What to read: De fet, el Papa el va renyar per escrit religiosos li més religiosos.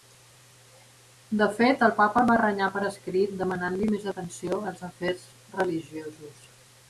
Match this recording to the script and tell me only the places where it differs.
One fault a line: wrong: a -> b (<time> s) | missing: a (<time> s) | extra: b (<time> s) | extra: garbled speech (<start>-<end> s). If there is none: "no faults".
wrong: religiosos -> demanant (3.4 s)
extra: atenció als afers (4.1 s)